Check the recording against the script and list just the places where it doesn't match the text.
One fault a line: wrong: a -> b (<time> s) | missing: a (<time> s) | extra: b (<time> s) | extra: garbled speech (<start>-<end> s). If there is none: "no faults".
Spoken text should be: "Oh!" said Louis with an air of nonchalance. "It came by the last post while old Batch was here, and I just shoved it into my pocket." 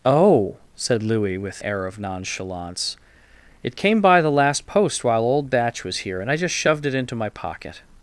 missing: an (1.6 s)